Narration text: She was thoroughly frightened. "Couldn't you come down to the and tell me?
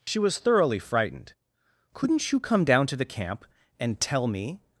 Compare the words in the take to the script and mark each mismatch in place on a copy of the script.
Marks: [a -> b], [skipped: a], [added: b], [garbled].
She was thoroughly frightened. "Couldn't you come down to the [added: camp] and tell me?